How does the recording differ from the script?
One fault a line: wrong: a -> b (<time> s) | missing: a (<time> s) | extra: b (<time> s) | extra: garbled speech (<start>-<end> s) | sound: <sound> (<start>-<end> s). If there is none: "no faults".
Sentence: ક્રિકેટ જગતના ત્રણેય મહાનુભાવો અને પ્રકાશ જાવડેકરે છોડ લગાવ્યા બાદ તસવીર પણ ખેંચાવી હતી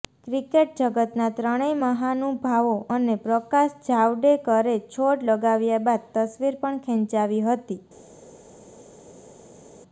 no faults